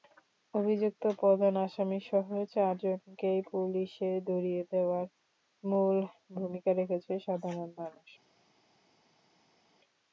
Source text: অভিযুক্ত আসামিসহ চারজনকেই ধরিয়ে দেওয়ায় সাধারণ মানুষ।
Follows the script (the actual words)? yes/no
no